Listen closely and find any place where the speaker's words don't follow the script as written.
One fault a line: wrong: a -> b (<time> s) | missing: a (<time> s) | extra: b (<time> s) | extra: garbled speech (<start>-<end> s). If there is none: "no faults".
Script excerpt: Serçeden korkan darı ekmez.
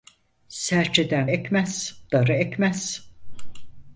wrong: korkan -> ekmez (1.3 s)